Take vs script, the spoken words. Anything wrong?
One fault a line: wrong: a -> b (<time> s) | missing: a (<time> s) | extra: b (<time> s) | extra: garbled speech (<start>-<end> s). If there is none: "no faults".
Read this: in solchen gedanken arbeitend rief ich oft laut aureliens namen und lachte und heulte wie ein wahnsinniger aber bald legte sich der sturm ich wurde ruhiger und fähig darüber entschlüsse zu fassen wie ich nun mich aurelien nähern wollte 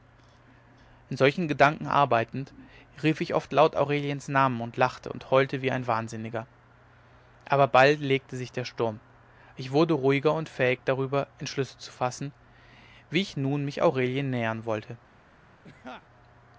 no faults